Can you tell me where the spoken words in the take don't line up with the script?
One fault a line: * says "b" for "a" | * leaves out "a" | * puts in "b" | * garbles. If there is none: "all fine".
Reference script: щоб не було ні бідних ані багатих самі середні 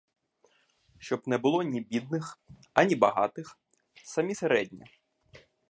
all fine